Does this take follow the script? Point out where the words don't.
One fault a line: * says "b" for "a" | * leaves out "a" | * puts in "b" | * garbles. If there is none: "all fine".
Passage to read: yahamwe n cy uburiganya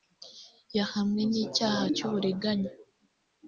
* puts in "icyaha"